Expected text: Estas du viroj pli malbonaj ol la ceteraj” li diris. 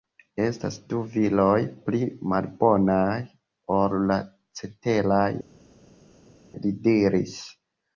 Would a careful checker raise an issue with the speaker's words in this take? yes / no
no